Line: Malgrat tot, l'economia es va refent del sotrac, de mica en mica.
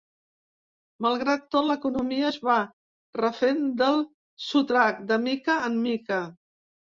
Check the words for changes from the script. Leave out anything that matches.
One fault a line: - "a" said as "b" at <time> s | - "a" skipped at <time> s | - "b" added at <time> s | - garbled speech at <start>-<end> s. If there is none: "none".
none